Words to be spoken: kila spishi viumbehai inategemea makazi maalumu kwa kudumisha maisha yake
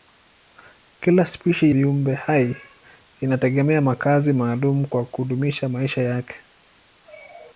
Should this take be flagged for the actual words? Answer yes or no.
no